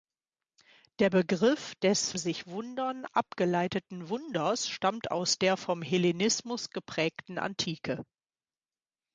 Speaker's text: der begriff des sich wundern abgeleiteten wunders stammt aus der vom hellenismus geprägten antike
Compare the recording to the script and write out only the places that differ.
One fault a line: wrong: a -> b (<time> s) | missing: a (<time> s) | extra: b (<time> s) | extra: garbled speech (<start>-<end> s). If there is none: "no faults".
no faults